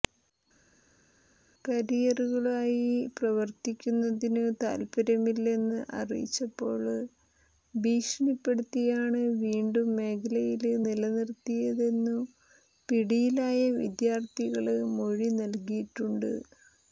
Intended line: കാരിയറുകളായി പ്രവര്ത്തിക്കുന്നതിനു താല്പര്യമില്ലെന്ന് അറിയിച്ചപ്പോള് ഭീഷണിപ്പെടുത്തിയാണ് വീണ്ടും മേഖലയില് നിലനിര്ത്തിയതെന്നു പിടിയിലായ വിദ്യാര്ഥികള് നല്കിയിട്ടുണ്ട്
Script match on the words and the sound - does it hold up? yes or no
no